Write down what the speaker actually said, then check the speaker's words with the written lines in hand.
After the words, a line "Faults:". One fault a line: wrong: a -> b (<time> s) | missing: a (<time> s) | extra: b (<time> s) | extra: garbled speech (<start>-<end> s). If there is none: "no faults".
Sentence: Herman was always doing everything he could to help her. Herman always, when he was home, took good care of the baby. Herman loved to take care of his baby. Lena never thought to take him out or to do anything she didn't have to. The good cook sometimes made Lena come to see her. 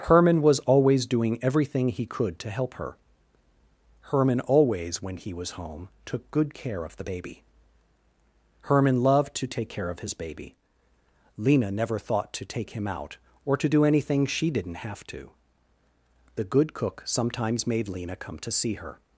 Herman was always doing everything he could to help her. Herman always, when he was home, took good care of the baby. Herman loved to take care of his baby. Lena never thought to take him out or to do anything she didn't have to. The good cook sometimes made Lena come to see her.
Faults:
no faults